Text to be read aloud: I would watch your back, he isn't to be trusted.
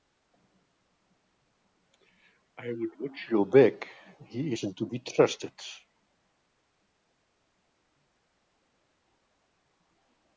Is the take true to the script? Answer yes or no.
yes